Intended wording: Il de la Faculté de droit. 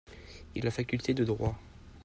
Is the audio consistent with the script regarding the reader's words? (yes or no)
yes